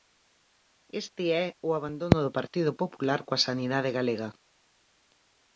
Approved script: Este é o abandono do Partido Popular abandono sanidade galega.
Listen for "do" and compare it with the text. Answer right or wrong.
right